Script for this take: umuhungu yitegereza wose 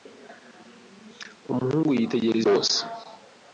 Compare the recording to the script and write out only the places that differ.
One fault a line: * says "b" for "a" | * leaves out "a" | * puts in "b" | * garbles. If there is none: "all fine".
all fine